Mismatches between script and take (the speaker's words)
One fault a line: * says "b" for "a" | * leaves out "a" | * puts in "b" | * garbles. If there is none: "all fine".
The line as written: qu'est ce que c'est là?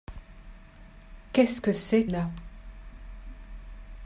all fine